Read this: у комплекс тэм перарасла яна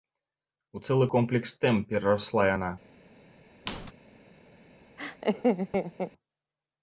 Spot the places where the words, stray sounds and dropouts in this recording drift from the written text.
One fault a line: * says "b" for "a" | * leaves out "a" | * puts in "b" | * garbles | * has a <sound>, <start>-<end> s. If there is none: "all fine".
* puts in "цэлы"
* has a squeak, 3.7-3.9 s
* has a laugh, 5.0-6.1 s